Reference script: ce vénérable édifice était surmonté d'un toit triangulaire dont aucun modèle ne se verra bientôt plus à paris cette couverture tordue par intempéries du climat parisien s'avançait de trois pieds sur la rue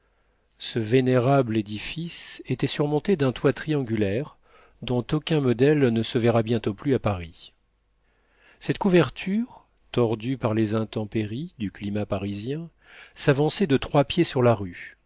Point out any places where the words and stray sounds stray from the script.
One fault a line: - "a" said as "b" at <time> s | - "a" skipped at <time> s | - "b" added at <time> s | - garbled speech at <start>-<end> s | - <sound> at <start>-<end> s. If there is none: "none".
- "les" added at 10.5 s